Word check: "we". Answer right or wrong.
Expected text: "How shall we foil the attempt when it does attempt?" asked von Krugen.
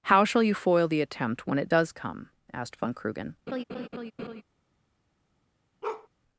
wrong